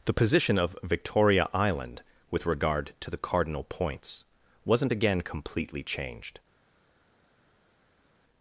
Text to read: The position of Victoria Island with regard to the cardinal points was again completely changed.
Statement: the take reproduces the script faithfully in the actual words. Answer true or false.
false